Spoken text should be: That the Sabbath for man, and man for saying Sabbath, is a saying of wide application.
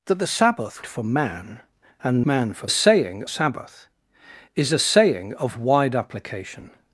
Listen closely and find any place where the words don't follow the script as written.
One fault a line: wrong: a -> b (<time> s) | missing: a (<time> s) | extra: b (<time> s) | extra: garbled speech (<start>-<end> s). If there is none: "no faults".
no faults